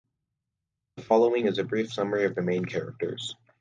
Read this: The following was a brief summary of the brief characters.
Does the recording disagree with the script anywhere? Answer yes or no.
yes